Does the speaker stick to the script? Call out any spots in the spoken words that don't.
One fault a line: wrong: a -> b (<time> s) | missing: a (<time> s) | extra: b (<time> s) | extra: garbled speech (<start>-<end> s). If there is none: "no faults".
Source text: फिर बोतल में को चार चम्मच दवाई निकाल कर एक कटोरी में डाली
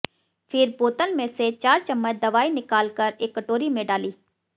wrong: को -> से (1.3 s)